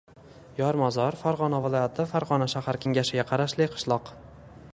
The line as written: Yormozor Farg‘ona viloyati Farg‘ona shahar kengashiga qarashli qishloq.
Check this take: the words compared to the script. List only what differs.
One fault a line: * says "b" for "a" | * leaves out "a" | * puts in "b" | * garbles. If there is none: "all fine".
all fine